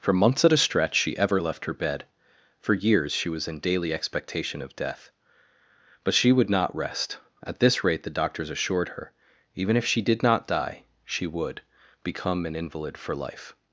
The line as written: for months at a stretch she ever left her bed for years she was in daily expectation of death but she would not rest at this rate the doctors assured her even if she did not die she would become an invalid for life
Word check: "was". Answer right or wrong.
right